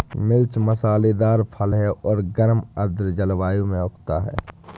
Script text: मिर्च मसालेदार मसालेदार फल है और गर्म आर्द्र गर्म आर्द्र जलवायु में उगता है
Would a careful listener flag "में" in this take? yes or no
no